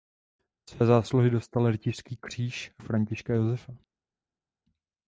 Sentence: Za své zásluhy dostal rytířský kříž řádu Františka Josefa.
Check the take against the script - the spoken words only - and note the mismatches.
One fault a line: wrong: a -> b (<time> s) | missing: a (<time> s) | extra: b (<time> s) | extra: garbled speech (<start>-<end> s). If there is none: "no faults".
missing: řádu (2.7 s)